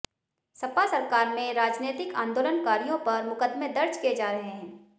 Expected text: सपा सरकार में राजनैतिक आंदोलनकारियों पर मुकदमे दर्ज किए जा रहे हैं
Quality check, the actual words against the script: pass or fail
pass